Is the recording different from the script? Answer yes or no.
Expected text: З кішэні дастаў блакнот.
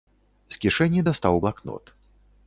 no